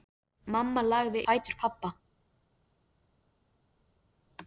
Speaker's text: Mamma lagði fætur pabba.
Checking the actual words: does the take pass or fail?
pass